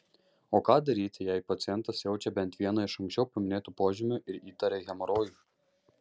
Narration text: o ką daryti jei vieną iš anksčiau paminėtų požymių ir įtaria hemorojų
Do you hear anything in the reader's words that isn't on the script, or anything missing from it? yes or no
yes